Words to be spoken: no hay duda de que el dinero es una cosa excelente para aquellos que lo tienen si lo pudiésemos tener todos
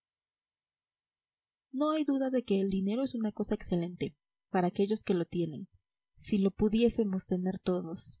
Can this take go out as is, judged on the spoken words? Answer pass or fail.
pass